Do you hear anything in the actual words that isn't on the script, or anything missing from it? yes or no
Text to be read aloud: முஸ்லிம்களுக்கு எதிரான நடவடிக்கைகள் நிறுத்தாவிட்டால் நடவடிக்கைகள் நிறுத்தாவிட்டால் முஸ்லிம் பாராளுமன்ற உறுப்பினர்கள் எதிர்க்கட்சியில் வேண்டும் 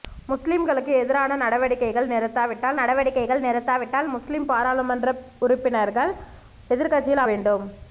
no